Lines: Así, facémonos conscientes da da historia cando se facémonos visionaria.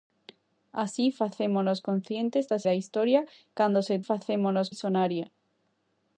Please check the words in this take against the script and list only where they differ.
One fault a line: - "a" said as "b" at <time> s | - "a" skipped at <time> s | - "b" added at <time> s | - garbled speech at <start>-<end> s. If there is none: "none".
none